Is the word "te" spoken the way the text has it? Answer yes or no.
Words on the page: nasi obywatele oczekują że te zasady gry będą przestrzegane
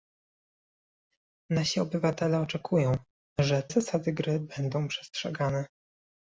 no